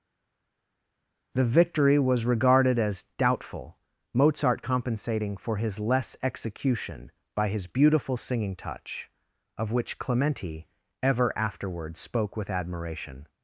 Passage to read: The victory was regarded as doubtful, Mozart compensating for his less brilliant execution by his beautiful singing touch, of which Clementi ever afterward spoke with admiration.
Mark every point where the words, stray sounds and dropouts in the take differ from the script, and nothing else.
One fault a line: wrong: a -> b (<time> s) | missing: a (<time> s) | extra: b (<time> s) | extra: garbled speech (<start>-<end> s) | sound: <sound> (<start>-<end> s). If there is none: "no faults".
missing: brilliant (6.2 s)